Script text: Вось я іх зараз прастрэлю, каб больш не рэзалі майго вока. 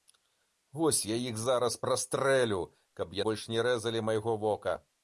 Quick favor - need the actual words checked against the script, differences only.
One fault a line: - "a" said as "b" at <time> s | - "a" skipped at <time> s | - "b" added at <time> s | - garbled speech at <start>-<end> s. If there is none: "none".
none